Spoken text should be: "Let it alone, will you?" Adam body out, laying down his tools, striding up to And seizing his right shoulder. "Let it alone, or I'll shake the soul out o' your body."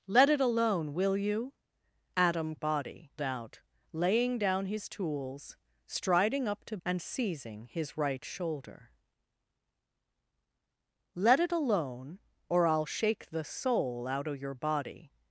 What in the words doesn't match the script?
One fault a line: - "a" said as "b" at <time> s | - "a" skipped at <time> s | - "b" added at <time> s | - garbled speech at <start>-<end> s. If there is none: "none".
none